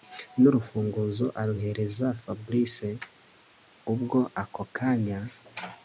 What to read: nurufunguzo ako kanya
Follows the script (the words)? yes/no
no